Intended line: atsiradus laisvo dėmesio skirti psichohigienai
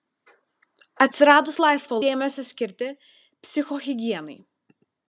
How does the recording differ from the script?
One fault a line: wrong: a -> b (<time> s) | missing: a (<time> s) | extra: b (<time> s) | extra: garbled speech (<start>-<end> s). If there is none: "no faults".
no faults